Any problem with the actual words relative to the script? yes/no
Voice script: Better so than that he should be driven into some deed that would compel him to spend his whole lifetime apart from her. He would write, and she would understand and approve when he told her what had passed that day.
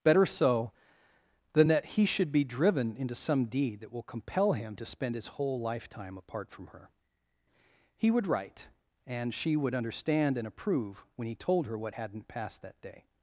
yes